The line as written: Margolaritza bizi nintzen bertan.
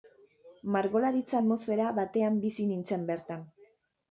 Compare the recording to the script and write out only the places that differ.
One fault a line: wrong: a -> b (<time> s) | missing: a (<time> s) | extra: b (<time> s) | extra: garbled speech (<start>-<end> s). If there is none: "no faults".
extra: atmosfera batean (1.4 s)